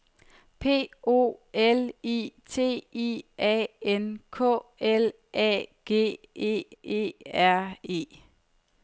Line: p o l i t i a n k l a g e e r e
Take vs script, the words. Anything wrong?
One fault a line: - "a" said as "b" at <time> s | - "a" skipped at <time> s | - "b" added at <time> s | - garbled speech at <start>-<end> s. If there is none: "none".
none